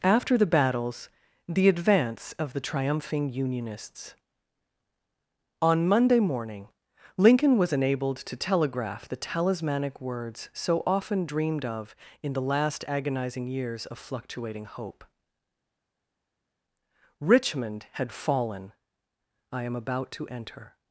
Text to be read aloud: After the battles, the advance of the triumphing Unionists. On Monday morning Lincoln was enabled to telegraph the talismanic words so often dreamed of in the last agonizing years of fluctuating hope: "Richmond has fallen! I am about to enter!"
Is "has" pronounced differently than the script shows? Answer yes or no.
yes